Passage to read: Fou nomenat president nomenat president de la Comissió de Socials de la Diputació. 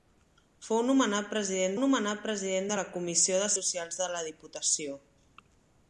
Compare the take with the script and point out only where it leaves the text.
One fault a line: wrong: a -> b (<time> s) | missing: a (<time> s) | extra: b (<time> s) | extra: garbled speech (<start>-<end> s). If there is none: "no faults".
no faults